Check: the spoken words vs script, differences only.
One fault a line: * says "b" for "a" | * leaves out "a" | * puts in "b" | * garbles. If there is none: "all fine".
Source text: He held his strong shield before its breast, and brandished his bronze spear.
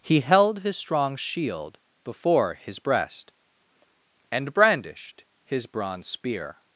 * says "his" for "its"